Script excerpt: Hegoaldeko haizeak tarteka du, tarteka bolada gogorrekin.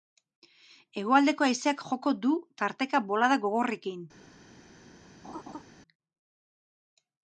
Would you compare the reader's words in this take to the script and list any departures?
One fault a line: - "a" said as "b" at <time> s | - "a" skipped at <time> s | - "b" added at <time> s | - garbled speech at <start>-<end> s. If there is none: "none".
- "tarteka" said as "joko" at 1.9 s